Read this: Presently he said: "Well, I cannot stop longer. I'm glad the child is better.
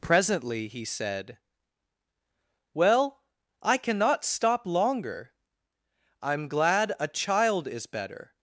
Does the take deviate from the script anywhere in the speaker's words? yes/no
yes